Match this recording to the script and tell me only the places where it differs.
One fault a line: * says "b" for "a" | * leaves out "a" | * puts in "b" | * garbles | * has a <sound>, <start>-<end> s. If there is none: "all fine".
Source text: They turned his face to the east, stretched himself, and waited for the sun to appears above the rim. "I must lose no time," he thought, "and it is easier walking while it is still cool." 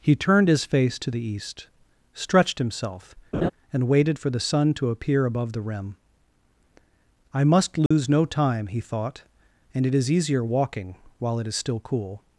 * says "He" for "They"
* has a laugh, 3.3-3.5 s
* says "appear" for "appears"
* has a dropout, 7.9-7.9 s